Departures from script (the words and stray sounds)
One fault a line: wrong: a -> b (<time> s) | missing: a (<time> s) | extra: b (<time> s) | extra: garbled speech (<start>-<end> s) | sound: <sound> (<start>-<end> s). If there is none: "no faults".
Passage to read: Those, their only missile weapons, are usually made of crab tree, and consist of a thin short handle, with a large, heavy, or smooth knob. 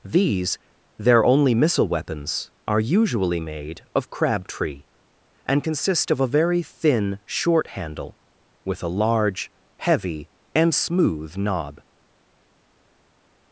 wrong: Those -> These (0.0 s)
extra: very (6.3 s)
wrong: or -> and (10.5 s)